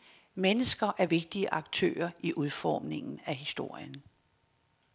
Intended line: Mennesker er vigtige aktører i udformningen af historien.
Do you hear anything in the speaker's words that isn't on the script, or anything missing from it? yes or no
no